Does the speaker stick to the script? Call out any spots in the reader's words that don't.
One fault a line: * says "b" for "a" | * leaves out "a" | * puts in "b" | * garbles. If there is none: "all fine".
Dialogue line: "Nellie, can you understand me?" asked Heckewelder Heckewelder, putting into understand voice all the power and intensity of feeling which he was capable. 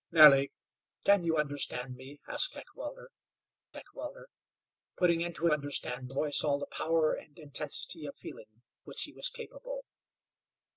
all fine